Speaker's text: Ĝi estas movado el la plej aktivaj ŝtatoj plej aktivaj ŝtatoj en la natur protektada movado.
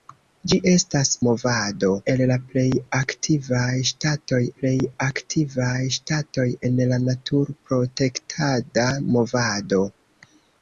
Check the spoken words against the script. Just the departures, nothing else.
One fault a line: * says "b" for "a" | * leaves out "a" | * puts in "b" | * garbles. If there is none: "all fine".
all fine